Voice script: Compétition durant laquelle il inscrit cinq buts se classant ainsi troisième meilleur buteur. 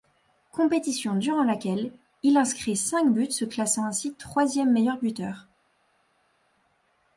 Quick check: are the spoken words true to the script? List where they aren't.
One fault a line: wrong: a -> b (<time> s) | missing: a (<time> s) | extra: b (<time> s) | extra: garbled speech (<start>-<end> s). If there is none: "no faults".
no faults